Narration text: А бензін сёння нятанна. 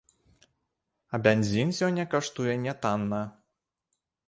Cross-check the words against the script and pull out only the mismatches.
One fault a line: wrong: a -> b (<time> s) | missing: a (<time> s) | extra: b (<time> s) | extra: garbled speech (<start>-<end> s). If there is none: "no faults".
extra: каштуе (2.1 s)